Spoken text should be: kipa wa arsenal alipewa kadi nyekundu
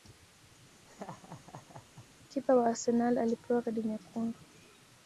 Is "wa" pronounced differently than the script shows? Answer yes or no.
no